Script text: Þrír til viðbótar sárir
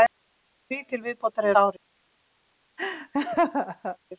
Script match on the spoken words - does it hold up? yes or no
yes